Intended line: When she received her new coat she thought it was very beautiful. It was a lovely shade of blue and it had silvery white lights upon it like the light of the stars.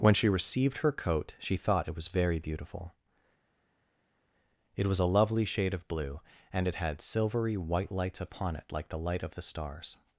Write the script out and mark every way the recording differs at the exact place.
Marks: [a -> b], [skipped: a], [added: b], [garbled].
When she received her [skipped: new] coat she thought it was very beautiful. It was a lovely shade of blue and it had silvery white lights upon it like the light of the stars.